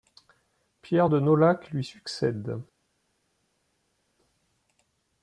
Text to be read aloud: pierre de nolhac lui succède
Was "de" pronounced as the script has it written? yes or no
yes